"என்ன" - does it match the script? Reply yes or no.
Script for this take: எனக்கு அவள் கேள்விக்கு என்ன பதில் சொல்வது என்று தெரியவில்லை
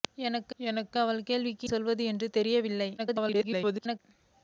no